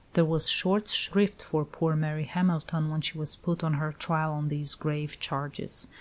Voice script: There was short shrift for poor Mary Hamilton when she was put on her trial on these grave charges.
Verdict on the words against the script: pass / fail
pass